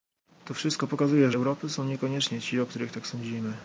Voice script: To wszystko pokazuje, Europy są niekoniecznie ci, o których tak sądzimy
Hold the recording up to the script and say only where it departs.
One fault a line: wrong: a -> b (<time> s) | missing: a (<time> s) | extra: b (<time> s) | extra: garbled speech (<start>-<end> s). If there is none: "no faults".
no faults